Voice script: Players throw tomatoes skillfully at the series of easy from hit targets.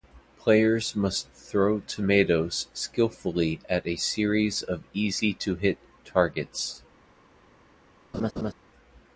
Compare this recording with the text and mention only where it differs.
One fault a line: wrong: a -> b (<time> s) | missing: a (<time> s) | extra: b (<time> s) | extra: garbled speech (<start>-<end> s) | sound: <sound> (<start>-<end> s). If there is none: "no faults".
extra: must (0.9 s)
wrong: the -> a (3.9 s)
wrong: from -> to (5.3 s)
sound: laugh (8.1-8.5 s)